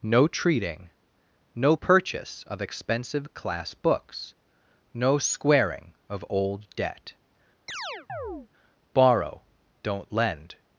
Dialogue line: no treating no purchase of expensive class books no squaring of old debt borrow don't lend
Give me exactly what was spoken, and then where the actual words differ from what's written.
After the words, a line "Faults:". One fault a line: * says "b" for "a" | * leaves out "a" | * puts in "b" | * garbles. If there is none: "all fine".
no treating no purchase of expensive class books no squaring of old debt borrow don't lend
Faults:
all fine